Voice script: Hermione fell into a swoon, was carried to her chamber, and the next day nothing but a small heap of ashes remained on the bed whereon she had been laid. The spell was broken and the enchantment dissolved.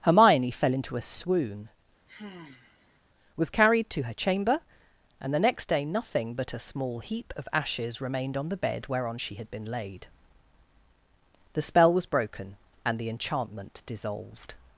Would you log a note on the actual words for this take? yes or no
no